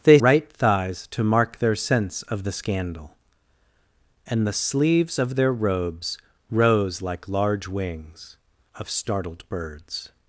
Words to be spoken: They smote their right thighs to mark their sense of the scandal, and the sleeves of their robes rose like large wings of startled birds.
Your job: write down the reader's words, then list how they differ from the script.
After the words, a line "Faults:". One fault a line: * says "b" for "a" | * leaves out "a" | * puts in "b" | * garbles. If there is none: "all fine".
They right thighs to mark their sense of the scandal, and the sleeves of their robes rose like large wings of startled birds.
Faults:
* leaves out "smote their"